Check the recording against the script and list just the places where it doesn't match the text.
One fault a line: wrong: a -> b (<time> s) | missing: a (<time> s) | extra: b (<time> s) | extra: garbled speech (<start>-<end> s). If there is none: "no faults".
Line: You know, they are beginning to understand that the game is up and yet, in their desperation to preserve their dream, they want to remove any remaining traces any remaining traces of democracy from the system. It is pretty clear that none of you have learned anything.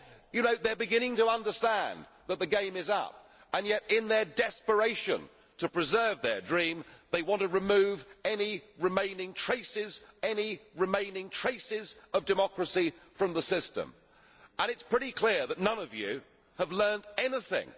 no faults